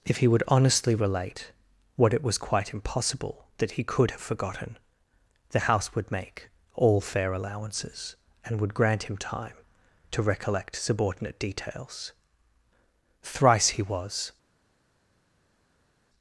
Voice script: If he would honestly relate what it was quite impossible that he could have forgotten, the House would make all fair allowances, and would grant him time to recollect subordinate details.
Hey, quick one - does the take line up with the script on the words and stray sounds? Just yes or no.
no